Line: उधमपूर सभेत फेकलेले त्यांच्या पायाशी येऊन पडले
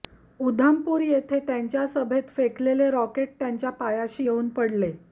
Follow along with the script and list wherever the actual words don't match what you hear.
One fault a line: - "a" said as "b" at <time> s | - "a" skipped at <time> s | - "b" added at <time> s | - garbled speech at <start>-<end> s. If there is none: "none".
- "येथे त्यांच्या" added at 1.0 s
- "रॉकेट" added at 2.9 s